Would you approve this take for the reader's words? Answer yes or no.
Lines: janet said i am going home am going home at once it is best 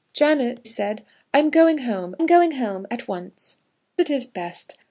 yes